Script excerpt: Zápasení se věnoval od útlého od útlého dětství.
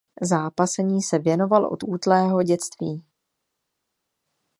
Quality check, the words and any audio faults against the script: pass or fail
fail